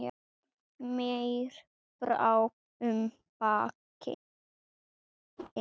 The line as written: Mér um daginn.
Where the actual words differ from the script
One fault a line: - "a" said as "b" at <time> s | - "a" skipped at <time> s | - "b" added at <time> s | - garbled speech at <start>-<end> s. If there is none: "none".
- "brá" added at 2.0 s